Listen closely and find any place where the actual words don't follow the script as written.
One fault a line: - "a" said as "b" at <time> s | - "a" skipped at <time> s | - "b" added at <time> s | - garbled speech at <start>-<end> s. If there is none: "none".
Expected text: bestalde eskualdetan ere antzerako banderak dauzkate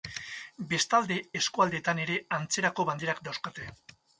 none